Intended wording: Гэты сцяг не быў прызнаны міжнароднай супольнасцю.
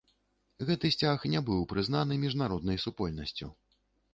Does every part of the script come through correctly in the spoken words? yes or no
yes